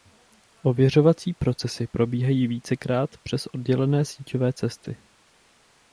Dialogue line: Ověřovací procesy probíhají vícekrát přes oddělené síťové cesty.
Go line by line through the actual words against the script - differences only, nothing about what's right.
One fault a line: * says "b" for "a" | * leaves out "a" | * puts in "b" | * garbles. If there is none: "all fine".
all fine